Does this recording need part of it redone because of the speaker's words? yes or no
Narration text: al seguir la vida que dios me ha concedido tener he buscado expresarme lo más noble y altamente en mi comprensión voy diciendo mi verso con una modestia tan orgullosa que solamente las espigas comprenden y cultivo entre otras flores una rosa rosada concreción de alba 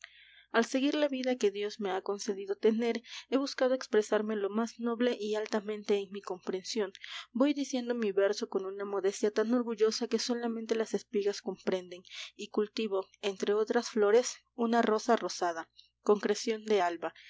no